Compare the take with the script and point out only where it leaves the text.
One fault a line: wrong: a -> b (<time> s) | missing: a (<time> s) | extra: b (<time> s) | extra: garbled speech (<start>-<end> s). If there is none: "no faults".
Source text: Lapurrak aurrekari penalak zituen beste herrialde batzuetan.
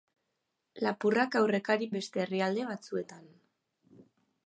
missing: penalak zituen (1.9 s)